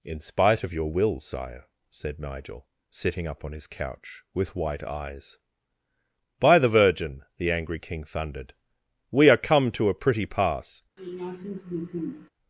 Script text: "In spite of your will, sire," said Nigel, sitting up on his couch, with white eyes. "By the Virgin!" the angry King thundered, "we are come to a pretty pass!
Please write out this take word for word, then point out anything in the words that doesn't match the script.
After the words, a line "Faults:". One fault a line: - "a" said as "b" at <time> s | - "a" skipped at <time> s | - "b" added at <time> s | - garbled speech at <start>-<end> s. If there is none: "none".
"In spite of your will, sire," said Nigel, sitting up on his couch, with white eyes. "By the Virgin!" the angry King thundered, "we are come to a pretty pass!
Faults:
none